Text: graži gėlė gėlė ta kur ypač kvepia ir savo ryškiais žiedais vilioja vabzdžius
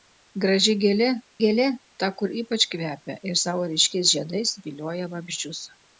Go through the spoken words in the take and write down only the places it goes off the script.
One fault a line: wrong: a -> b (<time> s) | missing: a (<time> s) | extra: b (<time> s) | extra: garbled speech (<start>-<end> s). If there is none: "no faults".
no faults